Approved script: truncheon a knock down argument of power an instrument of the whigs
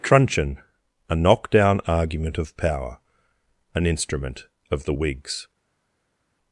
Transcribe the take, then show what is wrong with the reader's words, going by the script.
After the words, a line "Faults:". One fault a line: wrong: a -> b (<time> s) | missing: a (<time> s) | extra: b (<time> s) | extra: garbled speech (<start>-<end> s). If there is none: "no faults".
truncheon a knock down argument of power an instrument of the whigs
Faults:
no faults